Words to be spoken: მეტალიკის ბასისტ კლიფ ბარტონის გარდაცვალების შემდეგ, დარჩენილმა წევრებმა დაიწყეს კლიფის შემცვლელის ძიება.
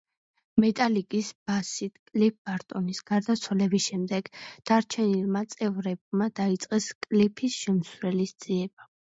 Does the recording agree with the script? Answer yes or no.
yes